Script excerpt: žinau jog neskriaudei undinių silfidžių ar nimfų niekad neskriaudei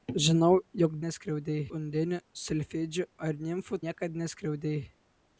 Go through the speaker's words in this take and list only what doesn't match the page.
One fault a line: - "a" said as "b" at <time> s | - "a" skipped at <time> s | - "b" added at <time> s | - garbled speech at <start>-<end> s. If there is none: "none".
none